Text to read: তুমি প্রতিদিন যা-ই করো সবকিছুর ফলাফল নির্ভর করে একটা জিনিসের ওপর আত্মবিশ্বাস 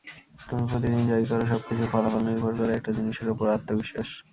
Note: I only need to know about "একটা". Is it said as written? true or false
true